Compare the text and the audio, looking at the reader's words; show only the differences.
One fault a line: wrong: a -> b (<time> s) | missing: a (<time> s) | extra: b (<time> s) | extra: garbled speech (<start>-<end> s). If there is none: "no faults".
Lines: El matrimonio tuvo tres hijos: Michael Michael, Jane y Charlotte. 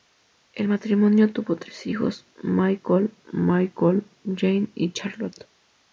no faults